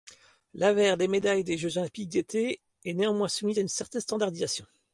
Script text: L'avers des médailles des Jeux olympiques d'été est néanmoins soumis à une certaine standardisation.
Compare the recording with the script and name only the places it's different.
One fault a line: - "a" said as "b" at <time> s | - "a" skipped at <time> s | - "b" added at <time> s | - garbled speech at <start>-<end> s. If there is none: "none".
none